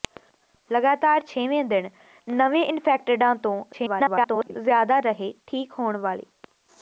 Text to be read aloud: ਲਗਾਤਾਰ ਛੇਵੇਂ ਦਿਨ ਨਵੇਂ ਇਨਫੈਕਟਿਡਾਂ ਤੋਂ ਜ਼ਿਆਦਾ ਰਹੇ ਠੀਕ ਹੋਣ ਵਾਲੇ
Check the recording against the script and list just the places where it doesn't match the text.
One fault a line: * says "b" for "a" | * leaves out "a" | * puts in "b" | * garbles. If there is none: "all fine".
* garbles